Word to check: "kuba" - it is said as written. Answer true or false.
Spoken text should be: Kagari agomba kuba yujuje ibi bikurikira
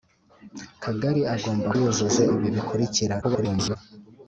false